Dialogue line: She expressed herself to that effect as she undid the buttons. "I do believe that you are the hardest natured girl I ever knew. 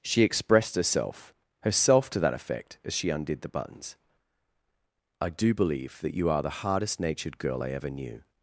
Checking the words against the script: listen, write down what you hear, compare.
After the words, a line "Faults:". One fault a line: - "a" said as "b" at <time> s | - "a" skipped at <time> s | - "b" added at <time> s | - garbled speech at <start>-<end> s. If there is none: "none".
She expressed herself herself to that effect as she undid the buttons. "I do believe that you are the hardest natured girl I ever knew.
Faults:
- "herself" added at 1.6 s